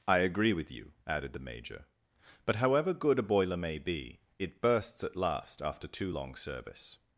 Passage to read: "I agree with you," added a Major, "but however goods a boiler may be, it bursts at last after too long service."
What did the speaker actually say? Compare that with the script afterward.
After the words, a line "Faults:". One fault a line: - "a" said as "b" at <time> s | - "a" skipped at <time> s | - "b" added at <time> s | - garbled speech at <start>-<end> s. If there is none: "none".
"I agree with you," added the Major, "but however good a boiler may be, it bursts at last after too long service."
Faults:
- "a" said as "the" at 1.3 s
- "goods" said as "good" at 2.9 s